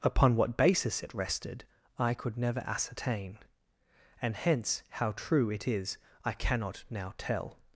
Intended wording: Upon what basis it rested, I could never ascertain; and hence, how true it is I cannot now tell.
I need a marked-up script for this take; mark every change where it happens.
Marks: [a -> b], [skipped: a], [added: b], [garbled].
Upon what basis it rested, I could never ascertain; and hence, how true it is I cannot now tell.